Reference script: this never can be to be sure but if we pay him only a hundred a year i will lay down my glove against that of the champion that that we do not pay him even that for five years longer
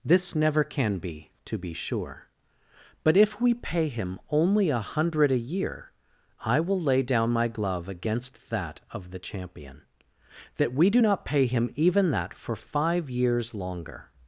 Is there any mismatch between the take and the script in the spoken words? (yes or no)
yes